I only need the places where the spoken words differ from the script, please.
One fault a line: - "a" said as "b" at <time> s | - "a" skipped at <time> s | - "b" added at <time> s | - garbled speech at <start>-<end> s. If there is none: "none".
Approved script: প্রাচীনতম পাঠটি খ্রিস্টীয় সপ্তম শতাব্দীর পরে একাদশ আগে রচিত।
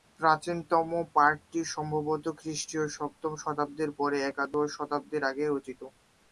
- "সম্ভবত" added at 1.7 s
- "শতাব্দীর" added at 4.8 s